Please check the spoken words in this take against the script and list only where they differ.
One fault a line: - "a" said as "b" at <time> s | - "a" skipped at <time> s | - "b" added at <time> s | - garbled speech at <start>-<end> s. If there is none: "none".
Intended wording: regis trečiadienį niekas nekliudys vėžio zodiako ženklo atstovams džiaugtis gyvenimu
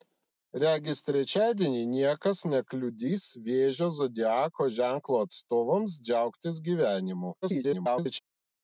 - garbled speech at 7.4-8.2 s